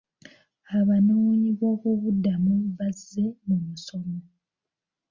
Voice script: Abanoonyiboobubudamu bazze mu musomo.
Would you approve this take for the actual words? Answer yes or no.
yes